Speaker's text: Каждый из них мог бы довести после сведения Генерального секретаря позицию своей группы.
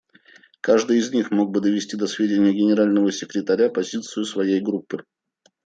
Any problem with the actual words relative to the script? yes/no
yes